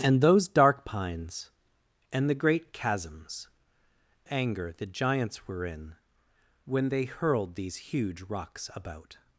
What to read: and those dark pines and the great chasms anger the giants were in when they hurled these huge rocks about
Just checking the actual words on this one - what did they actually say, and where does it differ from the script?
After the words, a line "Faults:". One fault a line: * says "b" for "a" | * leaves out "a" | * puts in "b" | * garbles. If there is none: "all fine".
and those dark pines and the great chasms anger the giants were in when they hurled these huge rocks about
Faults:
all fine